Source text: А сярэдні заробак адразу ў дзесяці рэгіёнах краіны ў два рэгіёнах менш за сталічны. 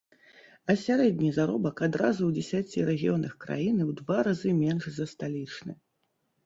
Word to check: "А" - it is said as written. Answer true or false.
true